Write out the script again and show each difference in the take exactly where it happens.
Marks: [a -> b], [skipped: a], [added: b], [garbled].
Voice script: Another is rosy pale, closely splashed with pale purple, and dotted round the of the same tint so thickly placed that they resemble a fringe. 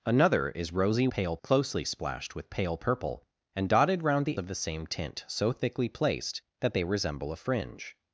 Another is rosy pale, closely splashed with pale purple, and dotted round the of the same tint so thickly placed that they resemble a fringe.